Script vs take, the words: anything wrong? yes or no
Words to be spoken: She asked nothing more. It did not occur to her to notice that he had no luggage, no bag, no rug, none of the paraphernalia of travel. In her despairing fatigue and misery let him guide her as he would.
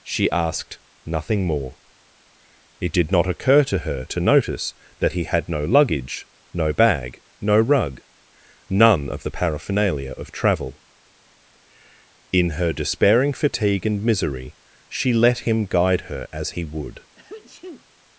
yes